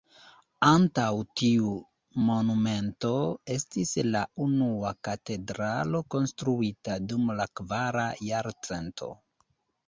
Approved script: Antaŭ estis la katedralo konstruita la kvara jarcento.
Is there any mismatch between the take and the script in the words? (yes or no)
yes